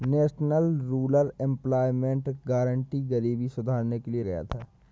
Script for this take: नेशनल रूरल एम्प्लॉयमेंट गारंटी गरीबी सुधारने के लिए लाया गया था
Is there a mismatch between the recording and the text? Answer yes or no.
yes